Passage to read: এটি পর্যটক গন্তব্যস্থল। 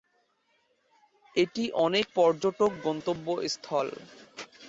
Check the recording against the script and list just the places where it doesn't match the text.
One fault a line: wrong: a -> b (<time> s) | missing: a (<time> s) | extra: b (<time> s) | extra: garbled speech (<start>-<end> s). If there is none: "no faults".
extra: অনেক (1.9 s)